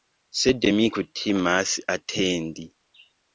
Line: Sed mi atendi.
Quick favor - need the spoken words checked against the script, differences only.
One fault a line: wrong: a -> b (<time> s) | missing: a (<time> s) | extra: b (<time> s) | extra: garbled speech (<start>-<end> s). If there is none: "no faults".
extra: kutimas (1.0 s)